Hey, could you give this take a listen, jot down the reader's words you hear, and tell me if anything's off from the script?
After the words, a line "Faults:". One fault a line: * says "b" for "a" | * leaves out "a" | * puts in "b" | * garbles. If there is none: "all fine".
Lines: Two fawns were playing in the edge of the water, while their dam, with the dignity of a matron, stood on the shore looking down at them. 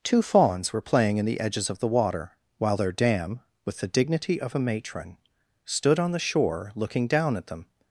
Two fawns were playing in the edges of the water, while their dam, with the dignity of a matron, stood on the shore looking down at them.
Faults:
* says "edges" for "edge"